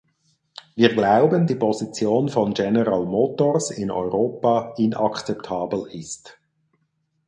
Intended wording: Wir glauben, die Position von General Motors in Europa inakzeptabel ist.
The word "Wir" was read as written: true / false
true